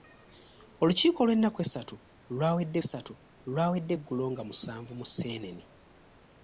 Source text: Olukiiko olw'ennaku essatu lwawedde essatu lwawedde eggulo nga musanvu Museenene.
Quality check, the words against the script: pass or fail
pass